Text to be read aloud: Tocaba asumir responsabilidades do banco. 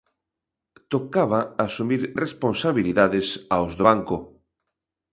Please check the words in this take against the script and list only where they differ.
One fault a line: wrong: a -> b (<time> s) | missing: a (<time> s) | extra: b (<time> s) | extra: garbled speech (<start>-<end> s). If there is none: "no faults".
extra: aos (3.5 s)